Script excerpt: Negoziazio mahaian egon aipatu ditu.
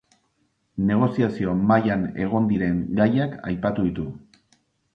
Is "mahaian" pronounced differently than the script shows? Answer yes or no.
no